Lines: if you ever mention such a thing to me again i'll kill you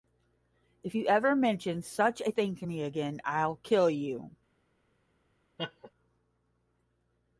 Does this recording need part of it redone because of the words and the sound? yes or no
yes